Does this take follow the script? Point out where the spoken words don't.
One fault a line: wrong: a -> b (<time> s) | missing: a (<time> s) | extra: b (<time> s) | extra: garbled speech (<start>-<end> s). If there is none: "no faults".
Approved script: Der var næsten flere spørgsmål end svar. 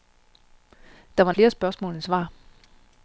missing: næsten (1.3 s)